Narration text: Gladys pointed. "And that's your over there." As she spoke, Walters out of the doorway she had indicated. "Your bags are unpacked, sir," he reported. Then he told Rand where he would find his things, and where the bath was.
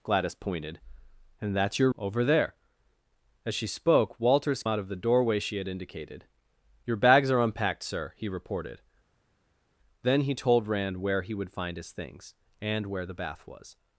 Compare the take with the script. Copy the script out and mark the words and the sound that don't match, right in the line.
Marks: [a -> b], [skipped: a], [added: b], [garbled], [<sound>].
Gladys pointed. "And that's your over there." As she spoke, Walters out of the doorway she had indicated. "Your bags are unpacked, sir," he reported. Then he told Rand where he would find his things, and where the bath was.